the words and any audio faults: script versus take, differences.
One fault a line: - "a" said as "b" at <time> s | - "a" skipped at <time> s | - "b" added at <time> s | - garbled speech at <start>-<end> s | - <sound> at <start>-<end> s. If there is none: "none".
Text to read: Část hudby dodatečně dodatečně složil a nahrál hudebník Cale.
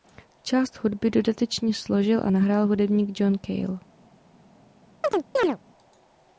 - "dodatečně" skipped at 1.7 s
- "John" added at 3.2 s
- chirp at 5.0-5.6 s